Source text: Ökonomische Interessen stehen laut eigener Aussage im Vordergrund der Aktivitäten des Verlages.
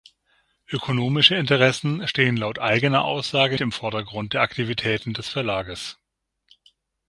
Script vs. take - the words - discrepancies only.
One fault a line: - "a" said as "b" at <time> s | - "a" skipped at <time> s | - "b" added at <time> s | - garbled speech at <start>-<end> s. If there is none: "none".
none